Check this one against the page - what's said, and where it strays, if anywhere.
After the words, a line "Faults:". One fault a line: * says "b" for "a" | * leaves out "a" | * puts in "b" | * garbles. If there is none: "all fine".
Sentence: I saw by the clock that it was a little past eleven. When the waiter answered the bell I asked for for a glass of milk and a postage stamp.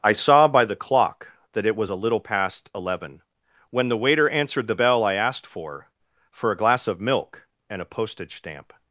I saw by the clock that it was a little past eleven. When the waiter answered the bell I asked for for a glass of milk and a postage stamp.
Faults:
all fine